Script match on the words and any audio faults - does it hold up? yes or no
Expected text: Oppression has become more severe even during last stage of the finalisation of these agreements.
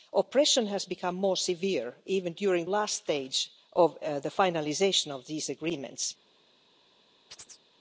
no